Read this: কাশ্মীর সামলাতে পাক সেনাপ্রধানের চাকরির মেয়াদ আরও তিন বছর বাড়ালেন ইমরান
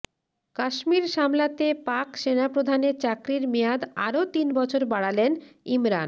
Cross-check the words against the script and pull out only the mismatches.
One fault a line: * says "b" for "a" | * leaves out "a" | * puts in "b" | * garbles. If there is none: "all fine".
all fine